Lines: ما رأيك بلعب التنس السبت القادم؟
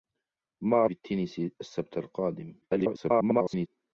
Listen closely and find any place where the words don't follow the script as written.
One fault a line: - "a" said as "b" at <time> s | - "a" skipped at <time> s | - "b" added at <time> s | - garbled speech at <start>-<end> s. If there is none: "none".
- "رأيك بلعب" skipped at 0.8 s
- garbled speech at 2.6-3.7 s